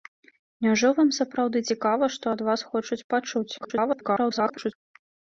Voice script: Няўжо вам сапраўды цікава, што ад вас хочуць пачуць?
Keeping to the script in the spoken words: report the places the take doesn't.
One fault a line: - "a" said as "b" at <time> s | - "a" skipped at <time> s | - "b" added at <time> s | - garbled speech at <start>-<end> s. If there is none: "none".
- garbled speech at 3.6-4.7 s